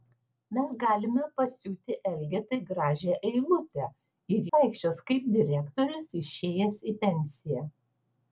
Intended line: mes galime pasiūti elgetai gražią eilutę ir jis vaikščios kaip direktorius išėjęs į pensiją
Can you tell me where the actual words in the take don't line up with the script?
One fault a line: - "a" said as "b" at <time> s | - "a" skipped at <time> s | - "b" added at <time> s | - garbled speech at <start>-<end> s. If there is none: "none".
- "jis" skipped at 4.5 s